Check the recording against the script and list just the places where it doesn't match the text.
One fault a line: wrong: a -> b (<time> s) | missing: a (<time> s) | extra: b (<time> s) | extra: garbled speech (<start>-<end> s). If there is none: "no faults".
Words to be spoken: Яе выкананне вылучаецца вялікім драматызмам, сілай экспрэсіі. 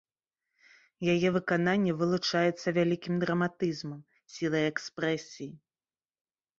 no faults